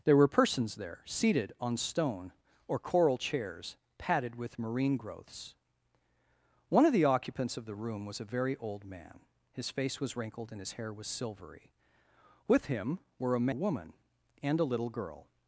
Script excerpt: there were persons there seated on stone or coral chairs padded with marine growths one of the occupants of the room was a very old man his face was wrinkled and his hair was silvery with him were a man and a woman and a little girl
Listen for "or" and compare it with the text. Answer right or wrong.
right